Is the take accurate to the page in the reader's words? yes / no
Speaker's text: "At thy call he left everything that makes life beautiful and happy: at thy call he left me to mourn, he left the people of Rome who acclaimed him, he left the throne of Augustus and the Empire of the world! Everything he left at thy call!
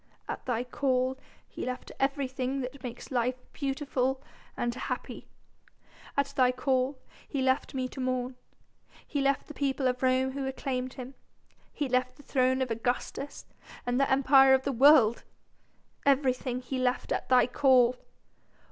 yes